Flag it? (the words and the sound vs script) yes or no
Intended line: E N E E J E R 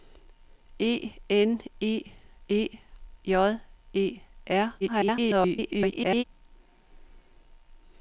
yes